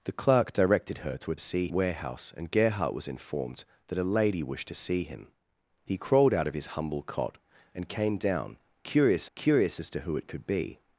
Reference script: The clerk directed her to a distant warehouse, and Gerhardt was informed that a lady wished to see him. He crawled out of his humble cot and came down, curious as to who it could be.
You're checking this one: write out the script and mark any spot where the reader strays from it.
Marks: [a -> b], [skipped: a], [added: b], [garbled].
The clerk directed her to a [distant -> see] warehouse, and Gerhardt was informed that a lady wished to see him. He crawled out of his humble cot and came down, curious [added: curious] as to who it could be.